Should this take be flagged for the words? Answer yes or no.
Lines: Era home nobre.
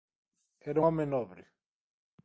no